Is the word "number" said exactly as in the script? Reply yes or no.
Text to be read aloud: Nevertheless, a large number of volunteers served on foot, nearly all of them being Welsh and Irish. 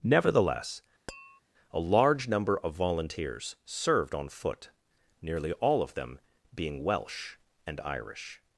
yes